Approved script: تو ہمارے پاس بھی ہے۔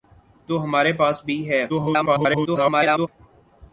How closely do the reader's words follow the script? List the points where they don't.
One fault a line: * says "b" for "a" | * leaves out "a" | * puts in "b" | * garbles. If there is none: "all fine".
* garbles